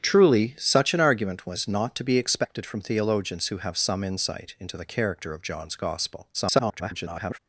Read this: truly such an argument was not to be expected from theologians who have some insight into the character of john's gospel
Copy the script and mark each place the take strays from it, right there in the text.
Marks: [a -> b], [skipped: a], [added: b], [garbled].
truly such an argument was not to be expected from theologians who have some insight into the character of john's gospel [garbled]